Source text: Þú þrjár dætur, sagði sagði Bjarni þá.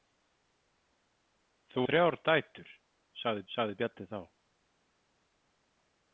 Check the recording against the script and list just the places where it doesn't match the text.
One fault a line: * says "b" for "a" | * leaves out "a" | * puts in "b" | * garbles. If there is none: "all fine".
all fine